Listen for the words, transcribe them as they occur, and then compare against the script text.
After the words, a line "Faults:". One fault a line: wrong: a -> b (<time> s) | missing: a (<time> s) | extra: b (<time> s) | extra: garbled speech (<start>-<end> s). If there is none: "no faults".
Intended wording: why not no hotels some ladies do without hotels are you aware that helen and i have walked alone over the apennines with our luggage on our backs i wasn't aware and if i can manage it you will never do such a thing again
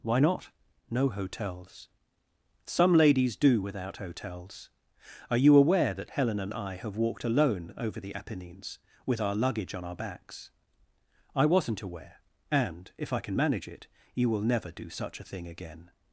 why not no hotels some ladies do without hotels are you aware that helen and i have walked alone over the apennines with our luggage on our backs i wasn't aware and if i can manage it you will never do such a thing again
Faults:
no faults